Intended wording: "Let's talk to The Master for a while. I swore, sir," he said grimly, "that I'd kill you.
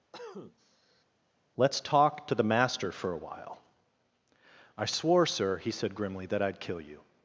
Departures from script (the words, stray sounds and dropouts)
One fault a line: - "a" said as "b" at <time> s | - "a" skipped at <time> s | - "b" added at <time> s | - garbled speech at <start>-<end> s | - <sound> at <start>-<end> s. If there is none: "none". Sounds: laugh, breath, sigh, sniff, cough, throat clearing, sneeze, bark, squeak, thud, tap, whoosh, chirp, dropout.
- cough at 0.1-1.0 s